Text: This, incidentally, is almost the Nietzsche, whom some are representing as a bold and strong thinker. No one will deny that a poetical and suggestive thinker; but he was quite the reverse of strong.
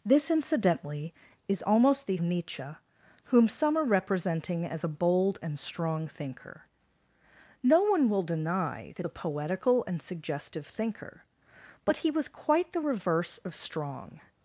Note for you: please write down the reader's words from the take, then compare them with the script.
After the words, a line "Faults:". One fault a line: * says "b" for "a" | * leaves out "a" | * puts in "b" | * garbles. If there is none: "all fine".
This, incidentally, is almost the Nietzsche, whom some are representing as a bold and strong thinker. No one will deny that a poetical and suggestive thinker; but he was quite the reverse of strong.
Faults:
all fine